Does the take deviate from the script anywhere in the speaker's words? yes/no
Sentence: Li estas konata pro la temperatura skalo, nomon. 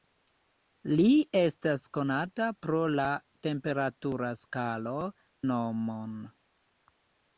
no